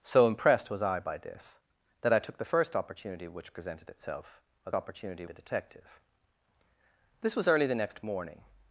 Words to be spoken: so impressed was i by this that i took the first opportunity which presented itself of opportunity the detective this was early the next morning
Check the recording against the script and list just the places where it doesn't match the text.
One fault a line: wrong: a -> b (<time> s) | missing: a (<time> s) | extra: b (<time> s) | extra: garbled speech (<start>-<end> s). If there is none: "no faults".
no faults